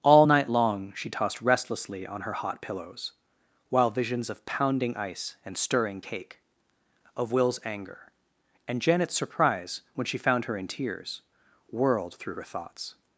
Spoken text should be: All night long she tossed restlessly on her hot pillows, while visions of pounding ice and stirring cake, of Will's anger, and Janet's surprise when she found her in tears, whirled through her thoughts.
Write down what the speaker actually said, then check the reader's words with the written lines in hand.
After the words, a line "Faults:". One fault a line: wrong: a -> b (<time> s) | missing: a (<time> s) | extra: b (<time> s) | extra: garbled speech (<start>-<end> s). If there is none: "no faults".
All night long she tossed restlessly on her hot pillows, while visions of pounding ice and stirring cake, of Will's anger, and Janet's surprise when she found her in tears, whirled through her thoughts.
Faults:
no faults